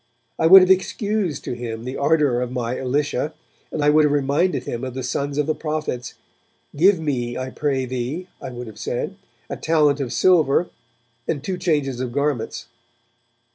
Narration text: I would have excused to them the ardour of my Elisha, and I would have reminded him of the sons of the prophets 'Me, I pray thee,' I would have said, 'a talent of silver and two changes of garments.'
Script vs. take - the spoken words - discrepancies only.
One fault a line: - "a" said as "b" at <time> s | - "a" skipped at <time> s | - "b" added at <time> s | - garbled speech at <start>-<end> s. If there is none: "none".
- "them" said as "him" at 1.5 s
- "Give" added at 6.8 s